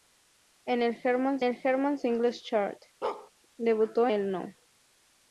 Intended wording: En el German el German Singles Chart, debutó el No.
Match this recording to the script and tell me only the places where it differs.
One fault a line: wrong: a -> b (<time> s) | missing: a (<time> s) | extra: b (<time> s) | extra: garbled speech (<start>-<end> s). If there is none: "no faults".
no faults